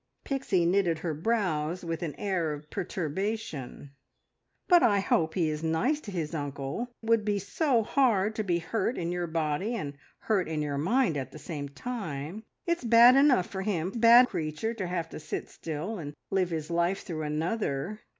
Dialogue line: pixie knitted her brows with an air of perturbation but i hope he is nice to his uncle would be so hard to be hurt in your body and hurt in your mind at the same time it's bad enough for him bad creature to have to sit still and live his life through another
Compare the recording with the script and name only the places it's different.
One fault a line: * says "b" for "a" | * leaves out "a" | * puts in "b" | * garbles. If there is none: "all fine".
all fine